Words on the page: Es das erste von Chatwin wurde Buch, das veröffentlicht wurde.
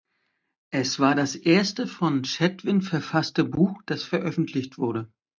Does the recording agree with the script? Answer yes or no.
no